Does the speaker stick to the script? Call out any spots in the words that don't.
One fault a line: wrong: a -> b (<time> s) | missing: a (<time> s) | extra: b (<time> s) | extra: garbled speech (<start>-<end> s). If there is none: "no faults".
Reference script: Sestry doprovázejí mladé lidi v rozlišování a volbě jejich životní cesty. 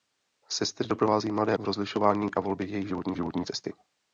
missing: lidi (1.6 s)
extra: životní (3.1 s)